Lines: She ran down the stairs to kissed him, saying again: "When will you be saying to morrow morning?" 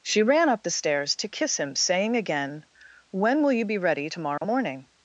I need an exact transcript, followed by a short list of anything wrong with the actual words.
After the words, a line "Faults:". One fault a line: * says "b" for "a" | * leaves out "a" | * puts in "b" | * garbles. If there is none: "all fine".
She ran up the stairs to kiss him, saying again: "When will you be ready to morrow morning?"
Faults:
* says "up" for "down"
* says "kiss" for "kissed"
* says "ready" for "saying"